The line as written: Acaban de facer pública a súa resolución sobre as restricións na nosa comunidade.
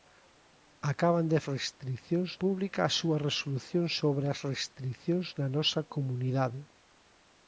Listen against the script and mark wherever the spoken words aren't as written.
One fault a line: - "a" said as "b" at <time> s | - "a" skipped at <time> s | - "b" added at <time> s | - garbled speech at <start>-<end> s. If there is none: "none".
- "facer" said as "restricións" at 1.5 s